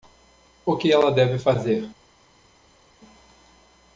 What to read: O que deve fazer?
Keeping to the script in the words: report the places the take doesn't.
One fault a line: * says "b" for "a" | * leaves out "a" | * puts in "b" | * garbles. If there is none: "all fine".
* puts in "ela"